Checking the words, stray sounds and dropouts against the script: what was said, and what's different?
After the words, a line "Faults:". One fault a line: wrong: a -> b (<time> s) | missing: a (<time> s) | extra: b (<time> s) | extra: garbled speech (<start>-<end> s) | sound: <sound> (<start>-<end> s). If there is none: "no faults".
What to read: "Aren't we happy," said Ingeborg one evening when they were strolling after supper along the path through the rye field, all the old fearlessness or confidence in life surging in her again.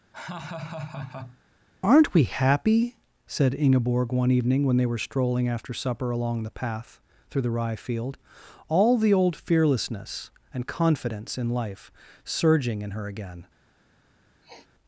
"Aren't we happy," said Ingeborg one evening when they were strolling after supper along the path through the rye field, all the old fearlessness and confidence in life surging in her again.
Faults:
sound: laugh (0.1-1.4 s)
wrong: or -> and (10.5 s)
sound: sniff (14.4-14.7 s)